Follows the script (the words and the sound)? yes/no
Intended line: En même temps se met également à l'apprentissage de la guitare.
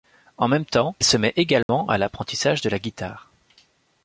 no